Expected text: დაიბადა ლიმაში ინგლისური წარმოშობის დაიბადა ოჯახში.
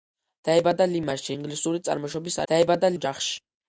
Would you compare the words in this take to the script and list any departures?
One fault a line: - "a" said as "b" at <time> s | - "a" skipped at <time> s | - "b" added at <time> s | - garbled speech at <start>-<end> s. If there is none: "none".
none